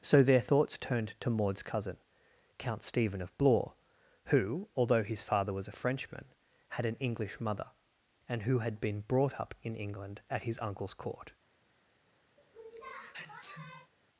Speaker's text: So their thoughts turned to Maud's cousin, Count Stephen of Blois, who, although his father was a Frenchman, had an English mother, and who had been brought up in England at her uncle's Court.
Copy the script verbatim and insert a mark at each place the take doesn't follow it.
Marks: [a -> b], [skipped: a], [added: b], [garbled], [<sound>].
So their thoughts turned to Maud's cousin, Count Stephen of Blois, who, although his father was a Frenchman, had an English mother, and who had been brought up in England at [her -> his] uncle's Court. [sneeze]